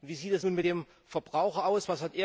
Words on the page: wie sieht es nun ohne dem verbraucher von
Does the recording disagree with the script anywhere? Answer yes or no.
yes